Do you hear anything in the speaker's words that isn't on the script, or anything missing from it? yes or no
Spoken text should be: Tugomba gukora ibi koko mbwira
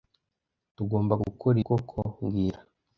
yes